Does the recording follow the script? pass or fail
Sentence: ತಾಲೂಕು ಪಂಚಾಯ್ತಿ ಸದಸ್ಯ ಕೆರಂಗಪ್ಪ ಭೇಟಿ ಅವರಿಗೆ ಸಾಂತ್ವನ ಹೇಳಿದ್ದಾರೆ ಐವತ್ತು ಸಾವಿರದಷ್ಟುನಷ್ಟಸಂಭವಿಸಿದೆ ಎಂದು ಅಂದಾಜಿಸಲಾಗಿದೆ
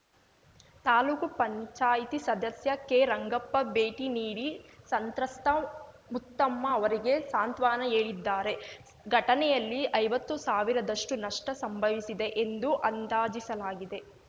fail